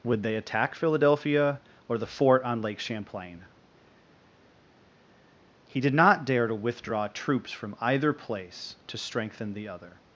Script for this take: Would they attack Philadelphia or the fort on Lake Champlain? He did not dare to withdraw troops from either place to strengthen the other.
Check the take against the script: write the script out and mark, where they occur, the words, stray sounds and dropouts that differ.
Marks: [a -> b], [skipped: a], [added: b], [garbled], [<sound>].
Would they attack Philadelphia or the fort on Lake Champlain? He did not dare to withdraw troops from either place to strengthen the other.